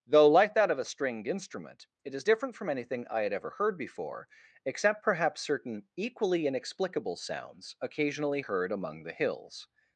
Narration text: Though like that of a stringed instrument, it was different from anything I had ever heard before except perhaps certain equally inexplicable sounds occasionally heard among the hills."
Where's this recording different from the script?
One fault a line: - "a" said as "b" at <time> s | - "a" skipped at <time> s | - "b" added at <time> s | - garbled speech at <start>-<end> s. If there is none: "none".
- "was" said as "is" at 2.1 s